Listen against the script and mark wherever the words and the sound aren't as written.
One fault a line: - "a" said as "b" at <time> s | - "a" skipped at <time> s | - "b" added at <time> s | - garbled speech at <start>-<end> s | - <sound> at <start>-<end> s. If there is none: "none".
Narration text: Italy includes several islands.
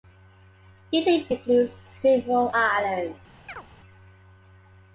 - chirp at 3.5-3.6 s